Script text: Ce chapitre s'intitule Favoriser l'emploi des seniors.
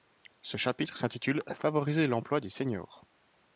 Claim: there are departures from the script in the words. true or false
false